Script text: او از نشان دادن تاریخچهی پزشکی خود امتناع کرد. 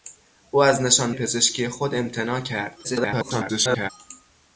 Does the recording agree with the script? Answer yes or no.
no